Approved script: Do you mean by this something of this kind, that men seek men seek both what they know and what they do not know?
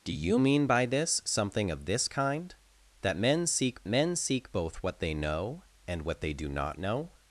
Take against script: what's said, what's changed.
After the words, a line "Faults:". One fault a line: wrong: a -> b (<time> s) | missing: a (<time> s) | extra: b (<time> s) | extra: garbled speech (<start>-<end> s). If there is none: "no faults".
Do you mean by this something of this kind, that men seek men seek both what they know and what they do not know?
Faults:
no faults